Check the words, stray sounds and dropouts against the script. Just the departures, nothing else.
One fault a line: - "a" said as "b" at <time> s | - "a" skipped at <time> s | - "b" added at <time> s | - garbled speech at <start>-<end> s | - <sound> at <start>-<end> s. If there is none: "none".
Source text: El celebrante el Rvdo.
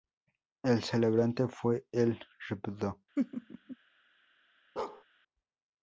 - "fue" added at 1.5 s
- laugh at 3.2-3.8 s
- bark at 4.8-5.0 s